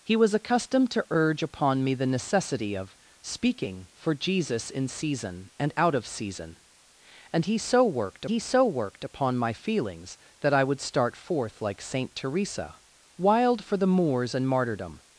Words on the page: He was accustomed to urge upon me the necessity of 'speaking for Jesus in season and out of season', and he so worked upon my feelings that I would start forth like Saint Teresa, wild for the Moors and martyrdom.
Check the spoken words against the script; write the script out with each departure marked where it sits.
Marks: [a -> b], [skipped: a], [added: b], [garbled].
He was accustomed to urge upon me the necessity of 'speaking for Jesus in season and out of season', and he so worked [added: he so worked] upon my feelings that I would start forth like Saint Teresa, wild for the Moors and martyrdom.